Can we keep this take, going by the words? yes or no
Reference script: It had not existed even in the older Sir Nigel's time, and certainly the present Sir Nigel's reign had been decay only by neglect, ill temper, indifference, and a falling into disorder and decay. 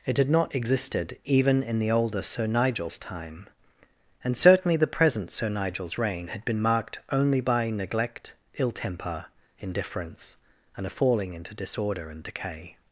no